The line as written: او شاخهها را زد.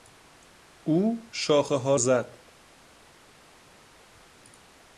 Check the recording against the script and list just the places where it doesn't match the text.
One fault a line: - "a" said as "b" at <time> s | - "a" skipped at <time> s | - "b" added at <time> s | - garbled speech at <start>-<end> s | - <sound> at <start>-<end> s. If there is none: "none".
- "را" skipped at 1.9 s